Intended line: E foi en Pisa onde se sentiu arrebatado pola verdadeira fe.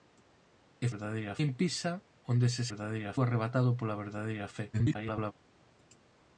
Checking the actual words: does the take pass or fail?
fail